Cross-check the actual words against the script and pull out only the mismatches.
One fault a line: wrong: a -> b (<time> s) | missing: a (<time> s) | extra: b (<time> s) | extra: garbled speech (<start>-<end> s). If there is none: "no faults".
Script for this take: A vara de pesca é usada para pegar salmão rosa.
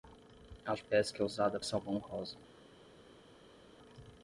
missing: vara (0.7 s)
missing: para pegar (1.6 s)